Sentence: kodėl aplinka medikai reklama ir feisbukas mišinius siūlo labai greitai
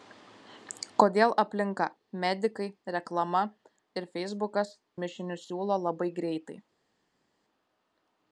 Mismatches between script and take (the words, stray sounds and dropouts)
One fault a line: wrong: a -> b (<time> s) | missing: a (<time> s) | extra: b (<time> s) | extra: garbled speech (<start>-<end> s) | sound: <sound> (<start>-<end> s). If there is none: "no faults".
no faults